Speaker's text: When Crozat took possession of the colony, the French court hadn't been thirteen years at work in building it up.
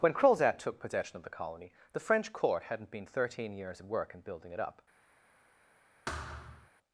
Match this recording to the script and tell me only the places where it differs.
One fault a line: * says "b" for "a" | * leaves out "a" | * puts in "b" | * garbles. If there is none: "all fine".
all fine